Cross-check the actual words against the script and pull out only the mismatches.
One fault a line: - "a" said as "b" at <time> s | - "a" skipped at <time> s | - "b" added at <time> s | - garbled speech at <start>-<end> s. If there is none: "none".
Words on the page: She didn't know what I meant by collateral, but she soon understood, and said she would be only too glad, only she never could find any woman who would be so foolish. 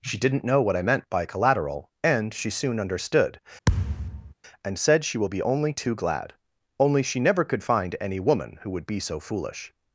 - "but" said as "and" at 2.0 s
- "would" said as "will" at 5.2 s